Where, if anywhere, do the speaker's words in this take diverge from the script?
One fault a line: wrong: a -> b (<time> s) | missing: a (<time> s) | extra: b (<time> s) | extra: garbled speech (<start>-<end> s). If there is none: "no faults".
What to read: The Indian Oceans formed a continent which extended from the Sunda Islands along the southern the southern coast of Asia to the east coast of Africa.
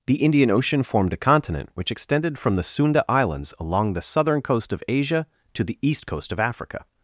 wrong: Oceans -> Ocean (0.5 s)
missing: the southern (4.4 s)